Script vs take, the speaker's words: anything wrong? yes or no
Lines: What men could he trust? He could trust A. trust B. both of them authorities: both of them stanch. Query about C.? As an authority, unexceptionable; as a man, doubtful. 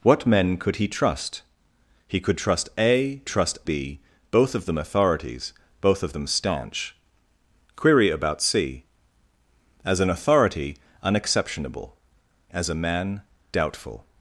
no